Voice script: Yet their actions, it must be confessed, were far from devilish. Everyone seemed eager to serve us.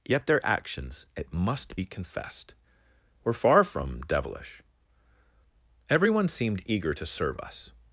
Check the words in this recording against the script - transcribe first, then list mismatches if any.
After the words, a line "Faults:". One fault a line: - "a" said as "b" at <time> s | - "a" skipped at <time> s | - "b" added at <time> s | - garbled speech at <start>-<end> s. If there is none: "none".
Yet their actions, it must be confessed, were far from devilish. Everyone seemed eager to serve us.
Faults:
none